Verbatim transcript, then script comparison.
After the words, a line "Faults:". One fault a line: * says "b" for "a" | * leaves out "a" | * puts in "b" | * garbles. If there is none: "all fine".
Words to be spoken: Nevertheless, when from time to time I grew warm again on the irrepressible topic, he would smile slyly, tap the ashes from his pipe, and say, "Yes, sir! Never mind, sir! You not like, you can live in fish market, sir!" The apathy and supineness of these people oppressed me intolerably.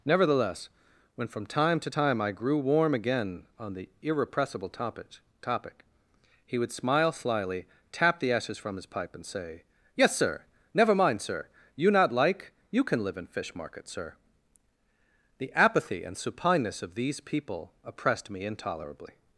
Nevertheless, when from time to time I grew warm again on the irrepressible topic topic, he would smile slyly, tap the ashes from his pipe, and say, "Yes, sir! Never mind, sir! You not like, you can live in fish market, sir!" The apathy and supineness of these people oppressed me intolerably.
Faults:
* puts in "topic"